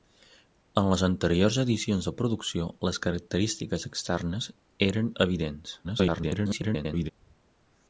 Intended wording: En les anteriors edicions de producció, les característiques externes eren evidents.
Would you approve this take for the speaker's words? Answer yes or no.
no